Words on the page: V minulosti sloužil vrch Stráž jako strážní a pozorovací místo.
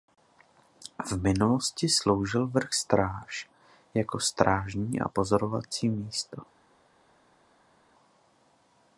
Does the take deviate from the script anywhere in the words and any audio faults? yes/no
no